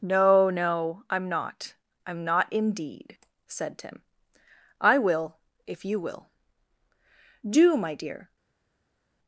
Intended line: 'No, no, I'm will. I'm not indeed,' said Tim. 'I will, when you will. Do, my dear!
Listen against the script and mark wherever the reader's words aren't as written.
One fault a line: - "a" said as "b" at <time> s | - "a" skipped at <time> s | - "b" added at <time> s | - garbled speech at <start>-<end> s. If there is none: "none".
- "will" said as "not" at 1.3 s
- "when" said as "if" at 5.7 s